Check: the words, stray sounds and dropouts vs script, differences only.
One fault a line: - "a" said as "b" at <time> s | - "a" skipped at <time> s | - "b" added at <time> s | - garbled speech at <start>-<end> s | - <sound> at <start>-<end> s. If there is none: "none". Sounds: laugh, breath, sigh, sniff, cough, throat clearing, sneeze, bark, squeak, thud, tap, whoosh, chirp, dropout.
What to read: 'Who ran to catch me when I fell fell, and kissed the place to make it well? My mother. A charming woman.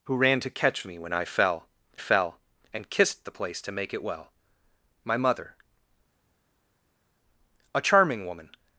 none